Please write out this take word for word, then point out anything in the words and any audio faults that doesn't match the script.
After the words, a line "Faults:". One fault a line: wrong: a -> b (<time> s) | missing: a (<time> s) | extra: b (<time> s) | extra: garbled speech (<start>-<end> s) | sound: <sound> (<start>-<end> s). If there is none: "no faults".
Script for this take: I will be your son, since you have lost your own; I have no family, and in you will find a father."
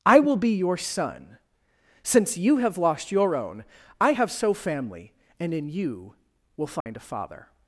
I will be your son, since you have lost your own; I have so family, and in you will find a father."
Faults:
wrong: no -> so (4.3 s)
sound: dropout (6.8-6.9 s)